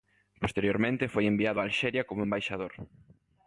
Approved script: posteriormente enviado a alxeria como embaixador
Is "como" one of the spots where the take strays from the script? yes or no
no